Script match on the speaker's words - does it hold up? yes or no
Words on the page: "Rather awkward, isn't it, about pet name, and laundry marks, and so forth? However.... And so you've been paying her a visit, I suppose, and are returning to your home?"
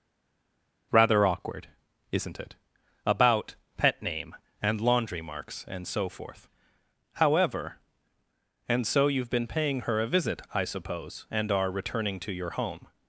yes